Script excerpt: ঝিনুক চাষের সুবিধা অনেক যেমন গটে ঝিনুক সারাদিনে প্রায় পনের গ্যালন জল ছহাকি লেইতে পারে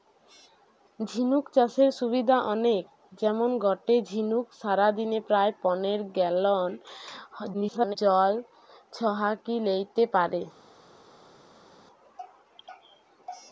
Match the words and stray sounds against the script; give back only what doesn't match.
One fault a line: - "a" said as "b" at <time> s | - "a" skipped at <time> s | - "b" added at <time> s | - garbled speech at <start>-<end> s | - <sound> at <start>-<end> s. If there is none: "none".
- garbled speech at 7.5-8.0 s